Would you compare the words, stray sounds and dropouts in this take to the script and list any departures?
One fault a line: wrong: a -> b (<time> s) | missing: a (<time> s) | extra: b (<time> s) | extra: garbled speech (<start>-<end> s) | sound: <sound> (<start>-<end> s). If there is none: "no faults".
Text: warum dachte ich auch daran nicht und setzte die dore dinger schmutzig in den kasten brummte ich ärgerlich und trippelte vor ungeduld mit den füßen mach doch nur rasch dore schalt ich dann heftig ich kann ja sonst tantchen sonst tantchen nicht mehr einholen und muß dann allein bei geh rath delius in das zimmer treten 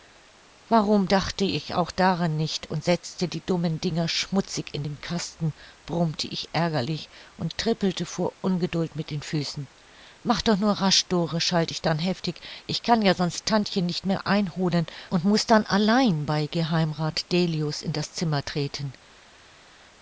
wrong: dore -> dummen (3.4 s)
missing: sonst tantchen (13.9 s)